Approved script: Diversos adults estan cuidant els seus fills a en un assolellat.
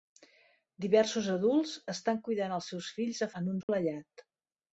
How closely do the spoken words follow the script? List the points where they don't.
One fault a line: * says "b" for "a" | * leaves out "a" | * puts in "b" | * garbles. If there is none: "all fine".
all fine